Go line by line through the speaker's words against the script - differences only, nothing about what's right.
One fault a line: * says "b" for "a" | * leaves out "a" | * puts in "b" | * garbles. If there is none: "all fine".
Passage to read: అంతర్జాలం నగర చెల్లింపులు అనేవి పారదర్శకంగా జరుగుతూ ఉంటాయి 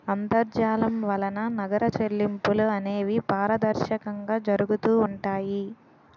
* puts in "వలన"